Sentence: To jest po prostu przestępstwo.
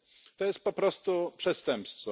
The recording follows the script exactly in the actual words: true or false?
true